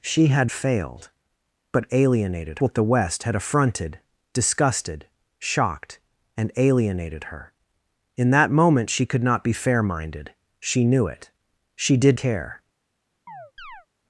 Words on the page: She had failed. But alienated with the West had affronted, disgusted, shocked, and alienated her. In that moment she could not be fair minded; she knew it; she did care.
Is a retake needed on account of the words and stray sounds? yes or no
yes